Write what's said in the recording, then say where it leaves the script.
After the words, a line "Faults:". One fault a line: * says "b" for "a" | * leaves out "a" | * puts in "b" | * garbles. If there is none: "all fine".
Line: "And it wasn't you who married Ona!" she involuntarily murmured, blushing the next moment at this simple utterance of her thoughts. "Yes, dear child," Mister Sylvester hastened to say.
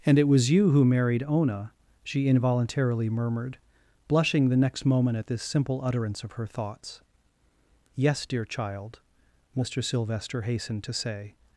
"And it was you who married Ona!" she involuntarily murmured, blushing the next moment at this simple utterance of her thoughts. "Yes, dear child," Mister Sylvester hastened to say.
Faults:
* says "was" for "wasn't"